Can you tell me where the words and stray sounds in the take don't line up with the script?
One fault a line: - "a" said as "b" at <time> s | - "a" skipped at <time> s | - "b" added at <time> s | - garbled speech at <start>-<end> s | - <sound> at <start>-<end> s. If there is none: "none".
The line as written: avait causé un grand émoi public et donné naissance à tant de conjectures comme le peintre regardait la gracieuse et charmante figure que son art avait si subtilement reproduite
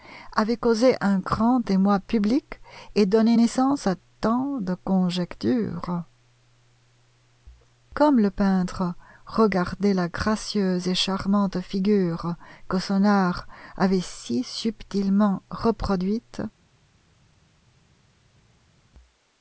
none